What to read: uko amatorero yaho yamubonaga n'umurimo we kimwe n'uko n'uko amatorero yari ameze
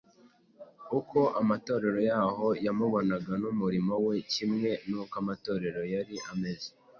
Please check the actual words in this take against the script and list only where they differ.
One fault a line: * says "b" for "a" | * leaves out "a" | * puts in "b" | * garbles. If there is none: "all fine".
* leaves out "n'uko"